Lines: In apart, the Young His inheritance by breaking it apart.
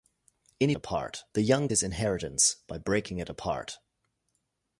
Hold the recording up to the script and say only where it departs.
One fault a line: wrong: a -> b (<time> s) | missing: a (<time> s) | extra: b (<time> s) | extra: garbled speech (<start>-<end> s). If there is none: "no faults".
no faults